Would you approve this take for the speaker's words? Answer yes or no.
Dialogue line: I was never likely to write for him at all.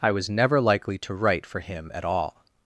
yes